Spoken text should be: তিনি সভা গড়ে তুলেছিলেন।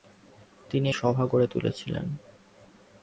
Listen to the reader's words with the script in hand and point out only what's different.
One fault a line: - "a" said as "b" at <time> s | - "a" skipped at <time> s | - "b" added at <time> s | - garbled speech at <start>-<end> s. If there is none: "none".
none